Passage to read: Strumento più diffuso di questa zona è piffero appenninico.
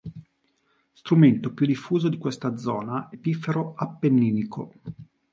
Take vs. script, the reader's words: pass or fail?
pass